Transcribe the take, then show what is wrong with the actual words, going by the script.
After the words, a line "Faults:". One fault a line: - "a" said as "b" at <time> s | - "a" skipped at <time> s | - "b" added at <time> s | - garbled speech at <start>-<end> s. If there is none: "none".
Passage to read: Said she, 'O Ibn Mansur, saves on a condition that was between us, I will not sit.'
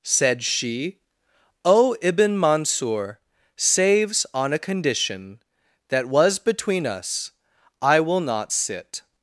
Said she, 'O Ibn Mansur, saves on a condition that was between us, I will not sit.'
Faults:
none